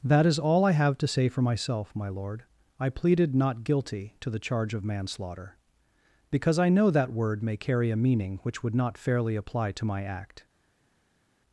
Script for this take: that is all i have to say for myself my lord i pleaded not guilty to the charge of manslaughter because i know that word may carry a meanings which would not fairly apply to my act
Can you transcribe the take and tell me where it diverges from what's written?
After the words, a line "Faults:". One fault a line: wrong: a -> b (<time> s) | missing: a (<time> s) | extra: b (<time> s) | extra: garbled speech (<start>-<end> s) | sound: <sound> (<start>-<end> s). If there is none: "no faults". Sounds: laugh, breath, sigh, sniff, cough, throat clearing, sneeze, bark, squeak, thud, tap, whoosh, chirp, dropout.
that is all i have to say for myself my lord i pleaded not guilty to the charge of manslaughter because i know that word may carry a meaning which would not fairly apply to my act
Faults:
wrong: meanings -> meaning (8.0 s)